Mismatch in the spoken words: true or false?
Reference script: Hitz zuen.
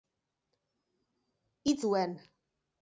false